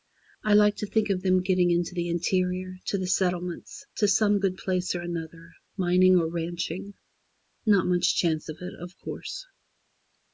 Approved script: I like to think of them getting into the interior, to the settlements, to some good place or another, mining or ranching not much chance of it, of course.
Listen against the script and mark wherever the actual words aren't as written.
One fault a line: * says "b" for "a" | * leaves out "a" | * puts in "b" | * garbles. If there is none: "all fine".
all fine